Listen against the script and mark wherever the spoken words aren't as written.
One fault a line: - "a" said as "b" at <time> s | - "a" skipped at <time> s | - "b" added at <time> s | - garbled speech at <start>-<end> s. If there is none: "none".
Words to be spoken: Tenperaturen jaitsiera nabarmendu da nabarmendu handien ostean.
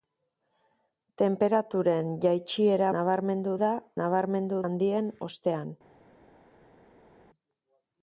none